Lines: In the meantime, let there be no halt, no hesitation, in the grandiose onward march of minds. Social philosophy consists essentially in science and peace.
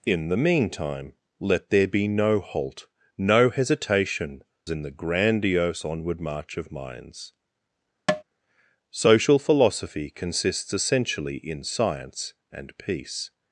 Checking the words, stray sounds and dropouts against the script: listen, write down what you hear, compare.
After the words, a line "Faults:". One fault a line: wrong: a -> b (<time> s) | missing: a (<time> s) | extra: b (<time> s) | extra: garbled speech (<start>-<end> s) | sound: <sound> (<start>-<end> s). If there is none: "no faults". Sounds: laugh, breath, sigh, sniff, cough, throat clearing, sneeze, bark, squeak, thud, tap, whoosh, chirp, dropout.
In the meantime, let there be no halt, no hesitation, in the grandiose onward march of minds. Social philosophy consists essentially in science and peace.
Faults:
sound: tap (8.1-8.2 s)